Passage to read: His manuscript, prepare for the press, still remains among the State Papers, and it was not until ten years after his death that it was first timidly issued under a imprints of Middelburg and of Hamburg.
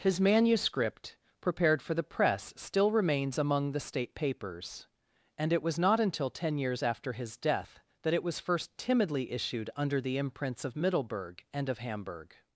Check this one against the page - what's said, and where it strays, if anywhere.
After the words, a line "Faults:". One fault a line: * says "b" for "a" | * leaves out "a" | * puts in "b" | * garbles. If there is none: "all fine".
His manuscript, prepared for the press, still remains among the State Papers, and it was not until ten years after his death that it was first timidly issued under the imprints of Middelburg and of Hamburg.
Faults:
* says "prepared" for "prepare"
* says "the" for "a"